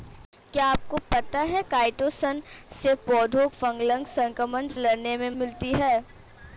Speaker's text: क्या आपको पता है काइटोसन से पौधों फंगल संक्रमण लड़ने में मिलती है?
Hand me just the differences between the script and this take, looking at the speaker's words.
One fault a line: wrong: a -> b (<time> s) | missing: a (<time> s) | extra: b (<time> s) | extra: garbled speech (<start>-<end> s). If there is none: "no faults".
no faults